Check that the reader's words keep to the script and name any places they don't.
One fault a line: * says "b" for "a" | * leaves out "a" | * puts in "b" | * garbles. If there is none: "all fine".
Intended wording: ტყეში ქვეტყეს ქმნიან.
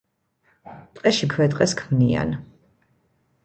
all fine